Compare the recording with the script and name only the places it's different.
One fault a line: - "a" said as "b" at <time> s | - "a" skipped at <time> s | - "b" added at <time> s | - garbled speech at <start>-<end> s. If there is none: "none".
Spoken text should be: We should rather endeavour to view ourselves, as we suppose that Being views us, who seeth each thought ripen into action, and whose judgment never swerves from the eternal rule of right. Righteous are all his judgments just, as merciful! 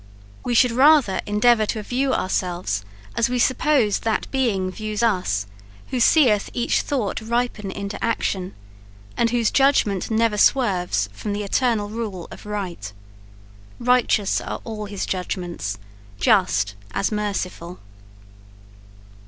none